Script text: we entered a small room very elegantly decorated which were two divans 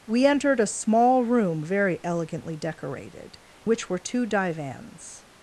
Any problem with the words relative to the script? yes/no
no